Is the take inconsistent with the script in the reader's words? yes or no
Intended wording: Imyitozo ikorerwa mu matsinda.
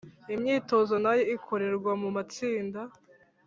yes